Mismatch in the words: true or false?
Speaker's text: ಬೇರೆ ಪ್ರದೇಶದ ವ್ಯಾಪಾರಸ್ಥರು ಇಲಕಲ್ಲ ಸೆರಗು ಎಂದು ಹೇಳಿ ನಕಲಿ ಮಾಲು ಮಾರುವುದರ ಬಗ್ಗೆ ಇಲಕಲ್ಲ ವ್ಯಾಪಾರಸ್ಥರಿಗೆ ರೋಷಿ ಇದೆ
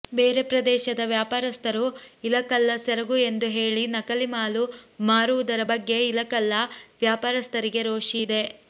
false